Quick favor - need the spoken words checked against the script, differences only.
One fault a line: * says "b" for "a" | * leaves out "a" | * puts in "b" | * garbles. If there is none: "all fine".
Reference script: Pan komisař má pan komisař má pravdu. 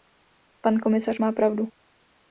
* leaves out "pan komisař má"